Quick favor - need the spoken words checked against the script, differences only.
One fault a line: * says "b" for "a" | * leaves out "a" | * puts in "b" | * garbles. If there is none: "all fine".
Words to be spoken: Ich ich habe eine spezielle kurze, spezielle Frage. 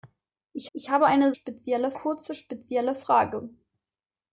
all fine